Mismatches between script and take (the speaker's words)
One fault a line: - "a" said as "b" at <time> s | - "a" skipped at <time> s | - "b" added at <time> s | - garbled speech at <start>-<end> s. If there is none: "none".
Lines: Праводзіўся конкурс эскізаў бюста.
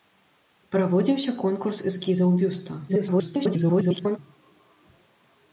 - garbled speech at 2.9-4.2 s